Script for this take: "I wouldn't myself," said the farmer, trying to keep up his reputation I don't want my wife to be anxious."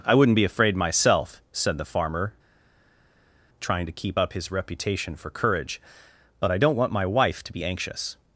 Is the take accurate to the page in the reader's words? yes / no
no